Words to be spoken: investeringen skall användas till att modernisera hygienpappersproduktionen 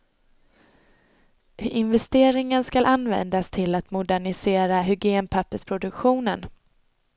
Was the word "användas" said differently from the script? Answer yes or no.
no